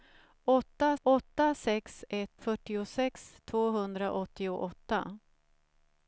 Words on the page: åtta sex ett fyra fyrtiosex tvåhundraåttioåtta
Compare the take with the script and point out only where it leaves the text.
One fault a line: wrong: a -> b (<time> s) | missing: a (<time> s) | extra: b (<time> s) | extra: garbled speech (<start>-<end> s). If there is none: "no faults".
extra: åtta (1.0 s)
missing: fyra (2.4 s)